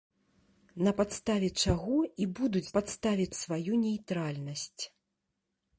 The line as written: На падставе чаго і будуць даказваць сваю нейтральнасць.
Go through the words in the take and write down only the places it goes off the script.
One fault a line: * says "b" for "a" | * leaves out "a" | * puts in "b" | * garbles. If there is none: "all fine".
* says "падставе" for "даказваць"